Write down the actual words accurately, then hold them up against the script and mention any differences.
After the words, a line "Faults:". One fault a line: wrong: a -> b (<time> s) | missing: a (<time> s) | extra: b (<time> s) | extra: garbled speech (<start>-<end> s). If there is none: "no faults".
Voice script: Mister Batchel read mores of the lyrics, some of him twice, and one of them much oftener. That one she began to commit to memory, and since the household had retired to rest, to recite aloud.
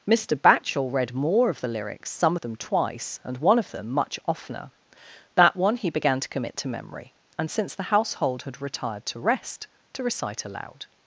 Mister Batchel read more of the lyrics, some of them twice, and one of them much oftener. That one he began to commit to memory, and since the household had retired to rest, to recite aloud.
Faults:
wrong: mores -> more (1.1 s)
wrong: him -> them (2.4 s)
wrong: she -> he (5.8 s)